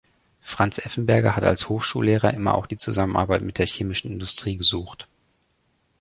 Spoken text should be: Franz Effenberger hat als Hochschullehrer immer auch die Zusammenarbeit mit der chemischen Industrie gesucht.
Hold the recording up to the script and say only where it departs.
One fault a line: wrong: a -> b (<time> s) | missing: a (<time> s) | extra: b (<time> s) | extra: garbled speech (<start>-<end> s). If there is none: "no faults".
no faults